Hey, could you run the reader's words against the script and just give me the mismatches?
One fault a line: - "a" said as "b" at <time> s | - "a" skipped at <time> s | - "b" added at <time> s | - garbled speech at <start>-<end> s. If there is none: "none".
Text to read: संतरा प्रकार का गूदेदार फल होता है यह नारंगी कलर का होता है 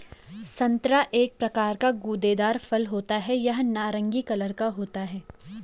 - "एक" added at 1.1 s